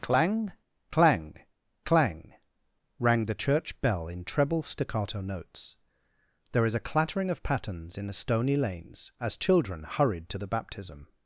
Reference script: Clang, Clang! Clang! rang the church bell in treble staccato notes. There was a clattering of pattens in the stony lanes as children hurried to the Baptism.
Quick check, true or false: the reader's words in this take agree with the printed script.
false